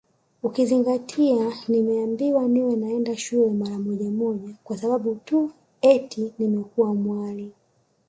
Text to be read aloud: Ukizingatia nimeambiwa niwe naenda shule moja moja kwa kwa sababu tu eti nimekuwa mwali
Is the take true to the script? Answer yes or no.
no